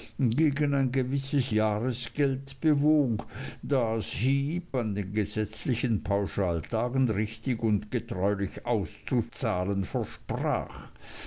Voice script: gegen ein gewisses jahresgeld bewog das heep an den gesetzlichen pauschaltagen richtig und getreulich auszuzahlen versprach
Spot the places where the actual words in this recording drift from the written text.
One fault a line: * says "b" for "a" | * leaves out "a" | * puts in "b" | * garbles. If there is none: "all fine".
all fine